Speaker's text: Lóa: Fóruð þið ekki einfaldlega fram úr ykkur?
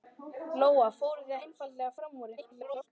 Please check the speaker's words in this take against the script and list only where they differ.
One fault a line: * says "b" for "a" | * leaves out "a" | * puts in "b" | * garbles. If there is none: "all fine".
* leaves out "ekki"
* garbles